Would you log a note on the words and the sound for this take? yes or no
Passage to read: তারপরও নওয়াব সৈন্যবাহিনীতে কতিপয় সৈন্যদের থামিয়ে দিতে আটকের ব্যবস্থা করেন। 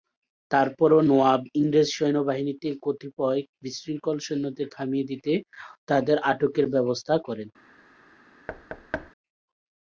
yes